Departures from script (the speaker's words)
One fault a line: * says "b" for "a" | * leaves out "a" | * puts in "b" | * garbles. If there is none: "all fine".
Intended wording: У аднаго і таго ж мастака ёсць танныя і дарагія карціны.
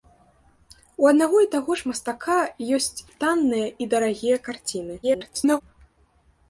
* garbles